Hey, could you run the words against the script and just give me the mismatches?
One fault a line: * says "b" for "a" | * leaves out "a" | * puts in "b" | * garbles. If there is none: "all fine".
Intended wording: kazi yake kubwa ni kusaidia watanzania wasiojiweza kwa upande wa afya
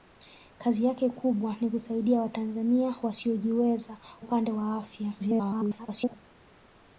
* leaves out "kwa"
* garbles